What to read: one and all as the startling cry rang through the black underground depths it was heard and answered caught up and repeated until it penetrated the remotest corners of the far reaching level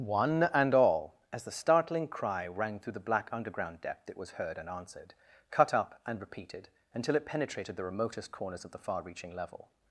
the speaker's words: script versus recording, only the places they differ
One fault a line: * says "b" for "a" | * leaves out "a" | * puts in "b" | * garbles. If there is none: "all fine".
* says "depth" for "depths"
* says "cut" for "caught"